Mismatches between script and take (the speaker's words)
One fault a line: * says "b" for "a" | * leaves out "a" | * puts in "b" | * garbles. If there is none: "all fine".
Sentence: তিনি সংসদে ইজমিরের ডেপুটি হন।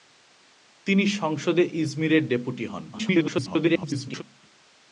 * garbles